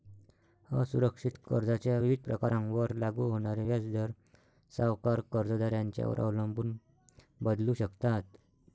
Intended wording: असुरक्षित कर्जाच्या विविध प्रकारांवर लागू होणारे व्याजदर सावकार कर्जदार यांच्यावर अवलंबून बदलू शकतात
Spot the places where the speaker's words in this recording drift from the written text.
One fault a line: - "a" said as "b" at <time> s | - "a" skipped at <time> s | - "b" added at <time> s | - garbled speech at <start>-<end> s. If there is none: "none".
none